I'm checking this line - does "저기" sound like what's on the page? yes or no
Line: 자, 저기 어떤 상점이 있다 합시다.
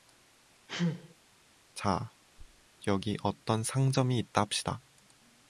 no